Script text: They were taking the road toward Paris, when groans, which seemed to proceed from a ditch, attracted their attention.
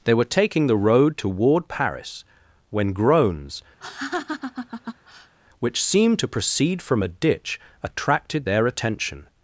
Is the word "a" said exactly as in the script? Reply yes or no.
yes